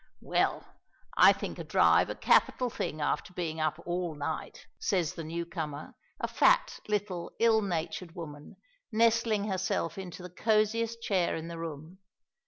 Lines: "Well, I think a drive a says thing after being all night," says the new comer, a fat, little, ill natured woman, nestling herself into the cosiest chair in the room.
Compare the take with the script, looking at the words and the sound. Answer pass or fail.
fail